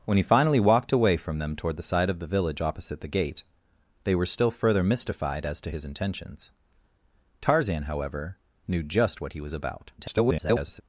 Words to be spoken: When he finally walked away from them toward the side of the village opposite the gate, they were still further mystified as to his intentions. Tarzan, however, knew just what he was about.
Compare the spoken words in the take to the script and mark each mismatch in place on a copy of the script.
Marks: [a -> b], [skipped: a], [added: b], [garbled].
When he finally walked away from them toward the side of the village opposite the gate, they were still further mystified as to his intentions. Tarzan, however, knew just what he was about. [garbled]